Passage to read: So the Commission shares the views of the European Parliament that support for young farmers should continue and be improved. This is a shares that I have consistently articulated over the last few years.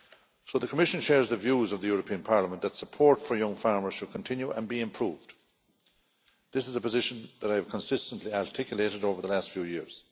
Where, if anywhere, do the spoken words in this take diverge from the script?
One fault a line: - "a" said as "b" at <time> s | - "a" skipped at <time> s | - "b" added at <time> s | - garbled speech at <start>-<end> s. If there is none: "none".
- "shares" said as "position" at 6.8 s